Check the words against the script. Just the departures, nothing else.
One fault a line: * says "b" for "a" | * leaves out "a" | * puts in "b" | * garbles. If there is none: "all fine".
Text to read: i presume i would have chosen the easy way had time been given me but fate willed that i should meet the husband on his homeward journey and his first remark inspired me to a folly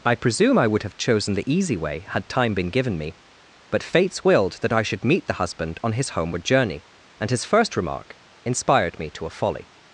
* says "fates" for "fate"